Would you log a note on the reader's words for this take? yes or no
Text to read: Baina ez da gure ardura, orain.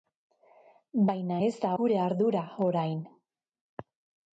no